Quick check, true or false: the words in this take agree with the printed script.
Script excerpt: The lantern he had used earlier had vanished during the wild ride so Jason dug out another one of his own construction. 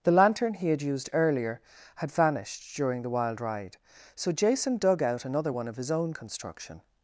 true